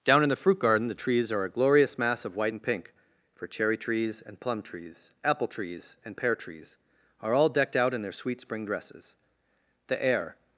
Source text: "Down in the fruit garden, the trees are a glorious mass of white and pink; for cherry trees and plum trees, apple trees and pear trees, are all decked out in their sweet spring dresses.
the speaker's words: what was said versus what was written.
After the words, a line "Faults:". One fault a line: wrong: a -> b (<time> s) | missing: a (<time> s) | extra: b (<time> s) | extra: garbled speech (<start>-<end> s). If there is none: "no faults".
"Down in the fruit garden, the trees are a glorious mass of white and pink; for cherry trees and plum trees, apple trees and pear trees, are all decked out in their sweet spring dresses. The air
Faults:
extra: The air (9.9 s)